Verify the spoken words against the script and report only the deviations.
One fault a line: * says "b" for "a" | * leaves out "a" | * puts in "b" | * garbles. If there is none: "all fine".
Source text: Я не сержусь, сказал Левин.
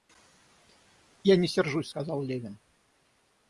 all fine